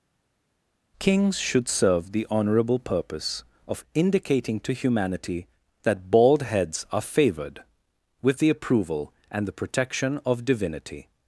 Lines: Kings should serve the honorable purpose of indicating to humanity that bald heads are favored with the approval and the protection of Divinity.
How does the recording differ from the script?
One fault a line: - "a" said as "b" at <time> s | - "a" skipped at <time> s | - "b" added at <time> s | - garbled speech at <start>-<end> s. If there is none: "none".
none